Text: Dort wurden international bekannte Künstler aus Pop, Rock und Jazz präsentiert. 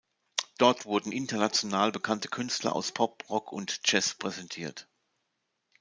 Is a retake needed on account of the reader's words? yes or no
no